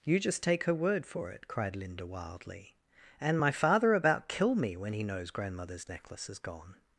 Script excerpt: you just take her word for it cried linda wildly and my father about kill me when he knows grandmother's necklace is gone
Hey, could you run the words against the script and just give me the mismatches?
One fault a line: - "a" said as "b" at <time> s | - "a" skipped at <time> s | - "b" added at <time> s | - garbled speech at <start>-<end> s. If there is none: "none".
none